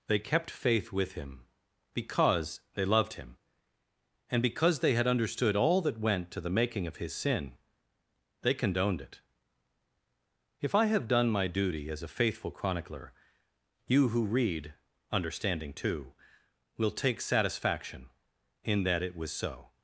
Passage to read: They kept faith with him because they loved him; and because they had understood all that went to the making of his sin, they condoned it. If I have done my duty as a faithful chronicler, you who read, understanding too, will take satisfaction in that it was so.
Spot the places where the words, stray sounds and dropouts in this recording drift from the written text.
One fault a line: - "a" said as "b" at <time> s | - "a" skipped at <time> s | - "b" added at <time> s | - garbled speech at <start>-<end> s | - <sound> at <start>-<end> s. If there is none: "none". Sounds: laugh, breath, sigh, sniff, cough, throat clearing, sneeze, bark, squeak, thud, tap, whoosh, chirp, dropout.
none